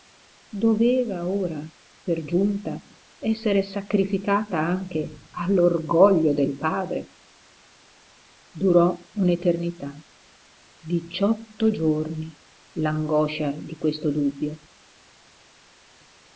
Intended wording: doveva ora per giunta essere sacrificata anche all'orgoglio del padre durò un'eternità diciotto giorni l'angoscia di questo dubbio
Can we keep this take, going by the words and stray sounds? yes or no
yes